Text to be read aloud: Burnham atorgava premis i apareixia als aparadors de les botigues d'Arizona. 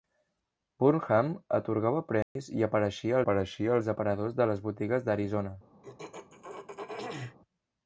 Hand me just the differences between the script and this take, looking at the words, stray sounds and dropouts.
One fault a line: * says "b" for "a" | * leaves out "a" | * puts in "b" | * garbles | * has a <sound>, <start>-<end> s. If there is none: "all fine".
* has a dropout, 2.2-2.4 s
* puts in "apareixia"
* has a throat clearing, 5.8-7.4 s